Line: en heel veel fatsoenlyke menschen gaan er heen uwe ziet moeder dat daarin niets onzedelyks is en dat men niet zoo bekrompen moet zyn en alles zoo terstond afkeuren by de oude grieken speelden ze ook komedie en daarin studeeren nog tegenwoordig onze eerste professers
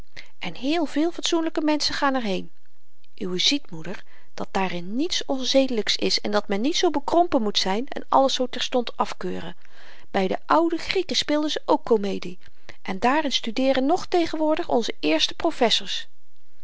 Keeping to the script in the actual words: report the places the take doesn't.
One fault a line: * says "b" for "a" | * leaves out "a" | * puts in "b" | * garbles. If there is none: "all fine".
all fine